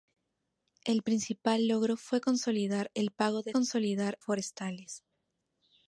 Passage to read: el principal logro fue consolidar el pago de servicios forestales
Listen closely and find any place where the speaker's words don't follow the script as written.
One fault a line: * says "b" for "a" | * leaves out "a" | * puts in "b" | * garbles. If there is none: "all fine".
* says "consolidar" for "servicios"